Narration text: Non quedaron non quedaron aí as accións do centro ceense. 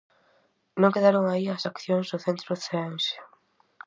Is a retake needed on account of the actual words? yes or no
yes